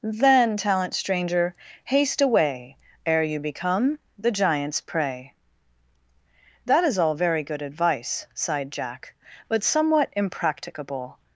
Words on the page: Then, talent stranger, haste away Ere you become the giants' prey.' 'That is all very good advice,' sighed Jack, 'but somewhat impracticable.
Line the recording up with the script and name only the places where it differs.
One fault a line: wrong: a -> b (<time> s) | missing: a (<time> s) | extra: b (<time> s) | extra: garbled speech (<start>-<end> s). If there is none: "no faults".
no faults